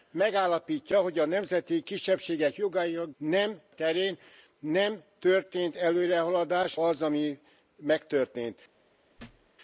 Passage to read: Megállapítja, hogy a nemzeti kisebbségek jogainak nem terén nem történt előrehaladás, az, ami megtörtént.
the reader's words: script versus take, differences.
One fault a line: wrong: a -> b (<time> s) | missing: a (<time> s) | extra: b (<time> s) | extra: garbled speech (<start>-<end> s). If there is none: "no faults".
no faults